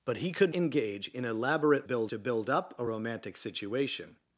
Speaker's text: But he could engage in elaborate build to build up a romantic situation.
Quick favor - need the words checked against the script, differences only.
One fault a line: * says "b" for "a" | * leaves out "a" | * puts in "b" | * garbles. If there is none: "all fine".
all fine